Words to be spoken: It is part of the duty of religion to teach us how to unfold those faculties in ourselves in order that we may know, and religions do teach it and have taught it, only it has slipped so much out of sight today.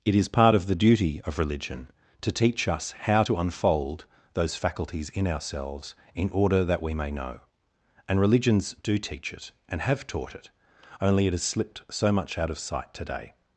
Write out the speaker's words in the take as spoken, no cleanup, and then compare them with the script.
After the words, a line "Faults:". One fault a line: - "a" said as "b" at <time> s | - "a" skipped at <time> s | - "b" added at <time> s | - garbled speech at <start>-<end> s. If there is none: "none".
It is part of the duty of religion to teach us how to unfold those faculties in ourselves in order that we may know, and religions do teach it and have taught it, only it has slipped so much out of sight today.
Faults:
none